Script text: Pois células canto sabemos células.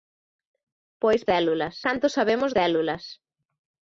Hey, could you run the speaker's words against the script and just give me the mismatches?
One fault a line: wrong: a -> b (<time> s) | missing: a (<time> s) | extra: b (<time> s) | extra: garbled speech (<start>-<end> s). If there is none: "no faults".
no faults